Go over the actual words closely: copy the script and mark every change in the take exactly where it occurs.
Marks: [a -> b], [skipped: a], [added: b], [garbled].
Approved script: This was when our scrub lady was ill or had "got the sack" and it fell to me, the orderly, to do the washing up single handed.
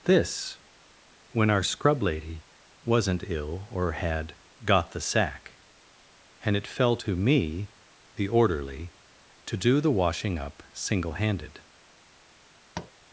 This [skipped: was] when our scrub lady [was -> wasn't] ill or had "got the sack" and it fell to me, the orderly, to do the washing up single handed.